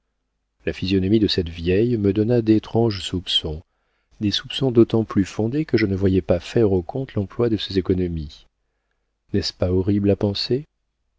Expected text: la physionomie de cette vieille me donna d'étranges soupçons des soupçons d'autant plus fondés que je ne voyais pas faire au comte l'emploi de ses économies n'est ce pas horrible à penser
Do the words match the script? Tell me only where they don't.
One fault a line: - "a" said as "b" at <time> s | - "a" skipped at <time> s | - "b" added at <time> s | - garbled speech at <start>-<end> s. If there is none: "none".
none